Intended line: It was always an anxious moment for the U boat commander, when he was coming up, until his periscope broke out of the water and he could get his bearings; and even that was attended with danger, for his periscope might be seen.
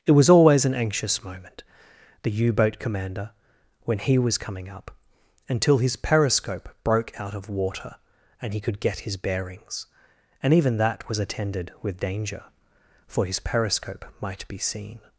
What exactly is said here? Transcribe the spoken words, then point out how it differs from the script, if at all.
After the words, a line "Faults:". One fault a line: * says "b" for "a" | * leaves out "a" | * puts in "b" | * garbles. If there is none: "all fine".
It was always an anxious moment the U boat commander, when he was coming up, until his periscope broke out of water and he could get his bearings; and even that was attended with danger, for his periscope might be seen.
Faults:
* leaves out "for"
* leaves out "the"